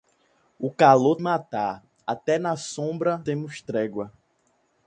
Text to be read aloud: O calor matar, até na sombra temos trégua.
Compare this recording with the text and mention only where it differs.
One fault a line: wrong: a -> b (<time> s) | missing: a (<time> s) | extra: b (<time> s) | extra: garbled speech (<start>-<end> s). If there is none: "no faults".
no faults